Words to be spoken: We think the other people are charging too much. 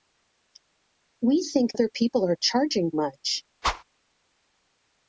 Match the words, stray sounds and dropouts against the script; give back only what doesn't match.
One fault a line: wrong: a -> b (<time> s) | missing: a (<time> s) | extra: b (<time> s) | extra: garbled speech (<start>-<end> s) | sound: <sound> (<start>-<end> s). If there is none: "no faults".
missing: the (1.8 s)
missing: too (2.9 s)
sound: whoosh (3.6-3.8 s)